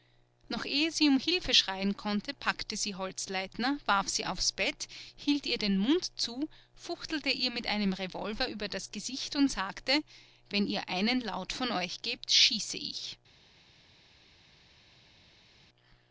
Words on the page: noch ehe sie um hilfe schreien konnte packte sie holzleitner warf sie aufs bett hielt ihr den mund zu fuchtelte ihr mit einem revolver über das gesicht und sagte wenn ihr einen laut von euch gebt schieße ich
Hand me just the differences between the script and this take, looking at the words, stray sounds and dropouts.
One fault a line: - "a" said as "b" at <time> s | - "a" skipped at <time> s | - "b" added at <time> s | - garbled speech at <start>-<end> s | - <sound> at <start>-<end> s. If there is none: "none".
none